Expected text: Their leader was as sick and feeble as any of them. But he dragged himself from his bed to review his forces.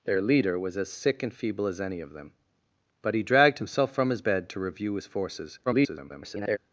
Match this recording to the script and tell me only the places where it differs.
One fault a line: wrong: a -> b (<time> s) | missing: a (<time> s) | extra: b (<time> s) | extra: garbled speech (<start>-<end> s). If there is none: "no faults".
extra: garbled speech (5.7-6.6 s)